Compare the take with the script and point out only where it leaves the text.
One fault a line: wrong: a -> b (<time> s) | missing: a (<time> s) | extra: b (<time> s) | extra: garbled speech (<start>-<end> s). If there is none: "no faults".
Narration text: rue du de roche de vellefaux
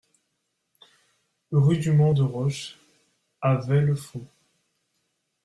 extra: mont (1.9 s)
wrong: de -> à (3.4 s)